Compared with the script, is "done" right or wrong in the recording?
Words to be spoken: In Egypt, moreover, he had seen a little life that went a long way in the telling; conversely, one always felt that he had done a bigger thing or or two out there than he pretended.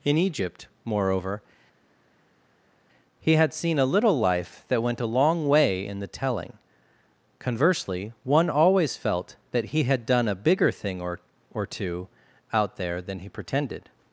right